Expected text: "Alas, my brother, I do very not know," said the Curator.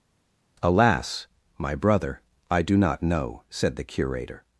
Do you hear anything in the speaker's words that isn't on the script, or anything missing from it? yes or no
yes